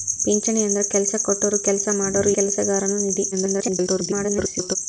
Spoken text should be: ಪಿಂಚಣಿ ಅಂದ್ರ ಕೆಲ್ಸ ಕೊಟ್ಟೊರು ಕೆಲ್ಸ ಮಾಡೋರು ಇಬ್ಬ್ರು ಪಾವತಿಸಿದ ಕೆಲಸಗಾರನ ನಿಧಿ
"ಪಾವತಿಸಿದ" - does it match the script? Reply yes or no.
no